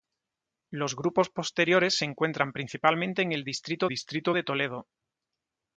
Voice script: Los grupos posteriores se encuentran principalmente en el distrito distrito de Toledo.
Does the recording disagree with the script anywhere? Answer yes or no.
no